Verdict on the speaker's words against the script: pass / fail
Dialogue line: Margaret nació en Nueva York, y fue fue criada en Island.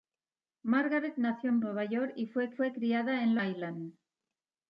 pass